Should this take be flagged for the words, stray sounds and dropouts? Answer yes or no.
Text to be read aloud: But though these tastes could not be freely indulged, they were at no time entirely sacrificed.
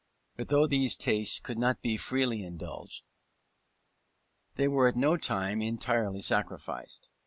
no